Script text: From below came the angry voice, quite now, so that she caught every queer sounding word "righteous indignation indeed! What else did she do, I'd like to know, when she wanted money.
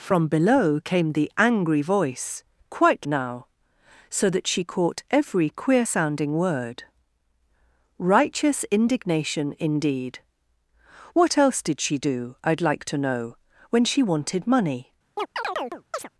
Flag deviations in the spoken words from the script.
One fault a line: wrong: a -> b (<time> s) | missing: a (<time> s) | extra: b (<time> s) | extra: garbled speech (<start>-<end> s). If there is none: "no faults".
no faults